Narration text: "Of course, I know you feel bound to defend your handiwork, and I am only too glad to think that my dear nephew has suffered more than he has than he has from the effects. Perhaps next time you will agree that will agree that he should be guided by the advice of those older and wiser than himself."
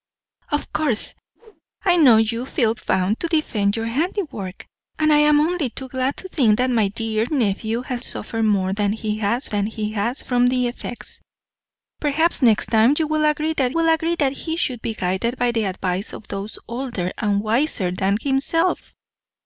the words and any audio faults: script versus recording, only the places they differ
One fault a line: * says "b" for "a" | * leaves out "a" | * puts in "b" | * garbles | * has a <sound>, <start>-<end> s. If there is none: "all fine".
* has a whoosh, 1.4-1.6 s